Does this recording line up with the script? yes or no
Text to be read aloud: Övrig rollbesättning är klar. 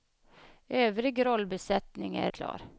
yes